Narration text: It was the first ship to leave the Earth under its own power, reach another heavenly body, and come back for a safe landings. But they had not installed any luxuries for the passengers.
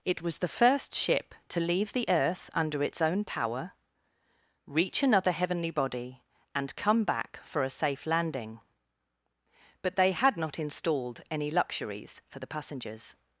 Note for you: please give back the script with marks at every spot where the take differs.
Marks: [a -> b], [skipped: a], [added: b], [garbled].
It was the first ship to leave the Earth under its own power, reach another heavenly body, and come back for a safe [landings. -> landing] But they had not installed any luxuries for the passengers.